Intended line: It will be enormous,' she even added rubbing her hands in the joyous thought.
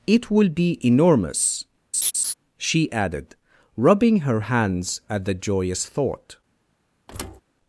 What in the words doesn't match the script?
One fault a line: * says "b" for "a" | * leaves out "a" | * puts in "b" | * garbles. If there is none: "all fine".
* leaves out "even"
* says "at" for "in"